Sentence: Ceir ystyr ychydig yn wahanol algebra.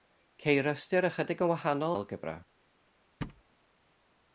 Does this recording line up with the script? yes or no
yes